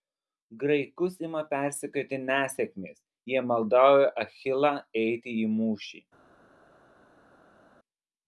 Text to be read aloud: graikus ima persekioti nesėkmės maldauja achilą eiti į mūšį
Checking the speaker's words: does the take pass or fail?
fail